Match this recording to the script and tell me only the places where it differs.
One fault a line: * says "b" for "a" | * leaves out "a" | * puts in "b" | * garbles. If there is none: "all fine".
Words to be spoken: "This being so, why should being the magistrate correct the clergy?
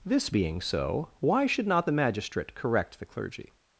* says "not" for "being"